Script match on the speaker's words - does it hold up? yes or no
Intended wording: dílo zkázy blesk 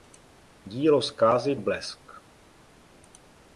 yes